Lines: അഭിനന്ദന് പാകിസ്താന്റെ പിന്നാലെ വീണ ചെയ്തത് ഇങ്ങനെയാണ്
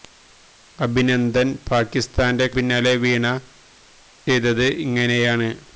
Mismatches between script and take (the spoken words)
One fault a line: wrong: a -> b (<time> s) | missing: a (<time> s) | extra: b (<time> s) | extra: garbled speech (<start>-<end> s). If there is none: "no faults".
no faults